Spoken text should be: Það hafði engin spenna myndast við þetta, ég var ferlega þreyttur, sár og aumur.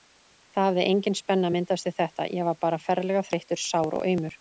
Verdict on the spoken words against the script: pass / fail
fail